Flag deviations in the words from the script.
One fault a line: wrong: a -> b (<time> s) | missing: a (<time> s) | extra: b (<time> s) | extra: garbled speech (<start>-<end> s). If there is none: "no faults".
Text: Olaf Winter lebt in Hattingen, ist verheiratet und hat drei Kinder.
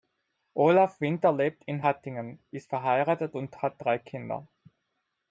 no faults